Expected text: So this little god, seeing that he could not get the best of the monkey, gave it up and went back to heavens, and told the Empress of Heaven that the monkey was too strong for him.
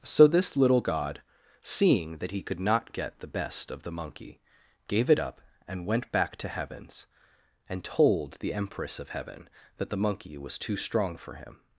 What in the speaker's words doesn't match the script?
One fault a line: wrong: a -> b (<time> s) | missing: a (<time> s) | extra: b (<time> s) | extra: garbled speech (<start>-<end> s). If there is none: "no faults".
no faults